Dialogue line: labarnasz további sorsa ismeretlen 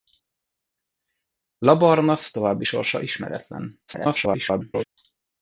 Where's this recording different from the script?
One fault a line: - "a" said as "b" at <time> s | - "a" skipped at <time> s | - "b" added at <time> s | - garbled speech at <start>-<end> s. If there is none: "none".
- garbled speech at 3.9-4.8 s